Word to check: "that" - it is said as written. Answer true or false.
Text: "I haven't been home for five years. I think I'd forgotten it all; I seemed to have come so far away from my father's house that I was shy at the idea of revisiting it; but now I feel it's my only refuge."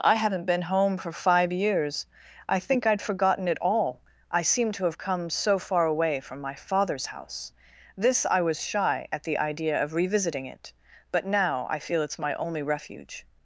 false